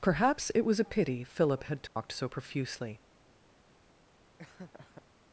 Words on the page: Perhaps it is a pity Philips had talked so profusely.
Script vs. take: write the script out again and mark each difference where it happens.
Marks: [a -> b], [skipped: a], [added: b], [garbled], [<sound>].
Perhaps it [is -> was] a pity [Philips -> Philip] had talked [dropout] so profusely. [laugh]